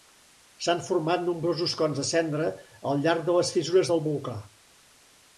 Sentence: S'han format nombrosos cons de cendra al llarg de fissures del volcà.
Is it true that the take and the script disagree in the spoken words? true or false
true